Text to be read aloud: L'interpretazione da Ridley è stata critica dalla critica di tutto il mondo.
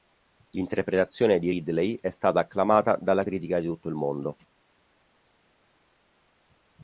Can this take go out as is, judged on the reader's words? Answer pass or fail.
fail